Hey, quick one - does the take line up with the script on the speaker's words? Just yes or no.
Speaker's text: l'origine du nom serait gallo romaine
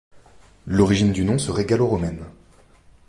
yes